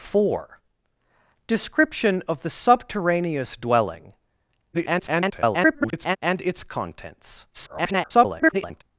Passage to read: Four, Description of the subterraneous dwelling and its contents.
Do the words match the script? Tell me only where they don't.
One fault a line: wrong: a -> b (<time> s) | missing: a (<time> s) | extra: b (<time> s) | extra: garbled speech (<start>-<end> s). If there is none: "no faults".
extra: garbled speech (4.7-6.2 s)
extra: garbled speech (7.5-8.8 s)